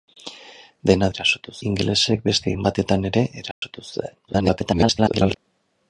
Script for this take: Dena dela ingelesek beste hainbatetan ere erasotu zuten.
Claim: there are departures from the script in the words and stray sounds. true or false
true